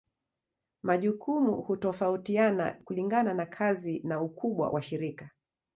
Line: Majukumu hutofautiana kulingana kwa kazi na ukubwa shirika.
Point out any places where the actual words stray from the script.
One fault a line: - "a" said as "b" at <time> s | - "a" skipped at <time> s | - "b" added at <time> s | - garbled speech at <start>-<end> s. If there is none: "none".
- "kwa" said as "na" at 3.3 s
- "wa" added at 4.7 s